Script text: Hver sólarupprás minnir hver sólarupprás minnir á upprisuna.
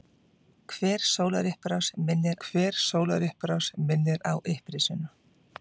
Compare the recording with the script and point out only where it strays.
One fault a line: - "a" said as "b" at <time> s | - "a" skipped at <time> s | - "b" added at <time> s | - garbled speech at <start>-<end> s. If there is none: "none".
none